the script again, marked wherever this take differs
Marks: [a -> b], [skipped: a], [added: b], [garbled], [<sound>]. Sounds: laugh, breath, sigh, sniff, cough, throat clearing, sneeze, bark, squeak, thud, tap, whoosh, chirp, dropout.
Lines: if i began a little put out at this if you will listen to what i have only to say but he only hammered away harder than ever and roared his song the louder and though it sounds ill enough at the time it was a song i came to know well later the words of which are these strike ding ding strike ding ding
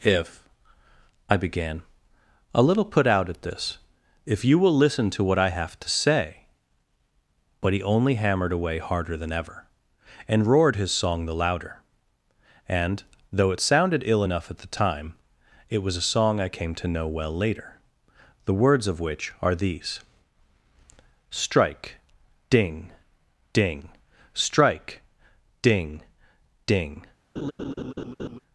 if i began a little put out at this if you will listen to what i have [skipped: only] to say but he only hammered away harder than ever and roared his song the louder and though it [sounds -> sounded] ill enough at the time it was a song i came to know well later the words of which are these strike ding ding strike ding ding [laugh]